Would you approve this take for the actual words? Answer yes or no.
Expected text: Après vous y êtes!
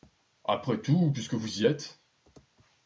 no